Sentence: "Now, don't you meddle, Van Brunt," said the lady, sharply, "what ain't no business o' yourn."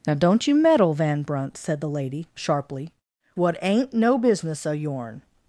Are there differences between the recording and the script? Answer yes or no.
no